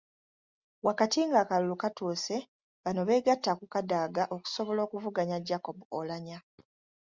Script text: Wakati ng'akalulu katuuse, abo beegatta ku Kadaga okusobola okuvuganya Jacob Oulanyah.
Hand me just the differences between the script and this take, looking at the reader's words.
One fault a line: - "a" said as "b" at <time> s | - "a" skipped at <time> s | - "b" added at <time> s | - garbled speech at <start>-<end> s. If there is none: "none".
- "abo" said as "bano" at 2.8 s